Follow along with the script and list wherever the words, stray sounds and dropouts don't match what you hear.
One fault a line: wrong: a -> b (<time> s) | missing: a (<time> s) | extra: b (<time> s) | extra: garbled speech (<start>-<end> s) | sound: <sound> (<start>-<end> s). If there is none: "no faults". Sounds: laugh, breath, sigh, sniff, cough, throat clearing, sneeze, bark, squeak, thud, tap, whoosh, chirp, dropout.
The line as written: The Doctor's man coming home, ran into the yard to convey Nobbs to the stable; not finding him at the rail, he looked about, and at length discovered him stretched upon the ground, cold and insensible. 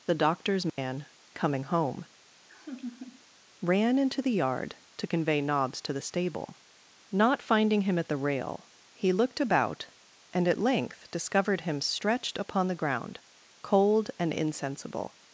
sound: dropout (0.7-0.8 s)
sound: laugh (2.5-3.2 s)